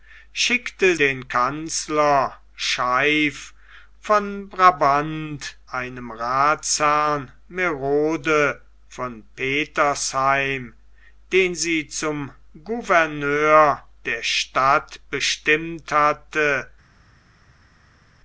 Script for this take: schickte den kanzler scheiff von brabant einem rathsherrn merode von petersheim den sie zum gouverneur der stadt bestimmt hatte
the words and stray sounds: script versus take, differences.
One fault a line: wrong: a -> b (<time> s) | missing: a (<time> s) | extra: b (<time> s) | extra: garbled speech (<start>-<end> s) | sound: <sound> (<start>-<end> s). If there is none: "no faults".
no faults